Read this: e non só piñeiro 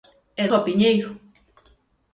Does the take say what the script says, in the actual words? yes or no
no